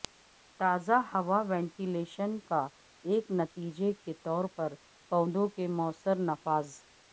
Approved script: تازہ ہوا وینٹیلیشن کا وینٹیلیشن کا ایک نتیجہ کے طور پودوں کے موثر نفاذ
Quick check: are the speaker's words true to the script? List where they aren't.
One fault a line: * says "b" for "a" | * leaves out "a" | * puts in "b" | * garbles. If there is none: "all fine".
* leaves out "وینٹیلیشن کا"
* puts in "پر"